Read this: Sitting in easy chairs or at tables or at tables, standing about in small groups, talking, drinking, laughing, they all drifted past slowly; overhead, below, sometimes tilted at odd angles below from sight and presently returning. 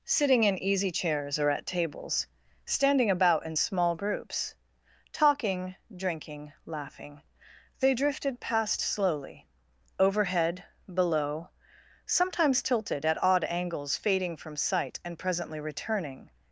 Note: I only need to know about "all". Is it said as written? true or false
false